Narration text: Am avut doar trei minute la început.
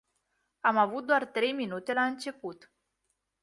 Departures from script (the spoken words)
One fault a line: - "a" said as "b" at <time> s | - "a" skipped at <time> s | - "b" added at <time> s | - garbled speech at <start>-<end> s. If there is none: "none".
none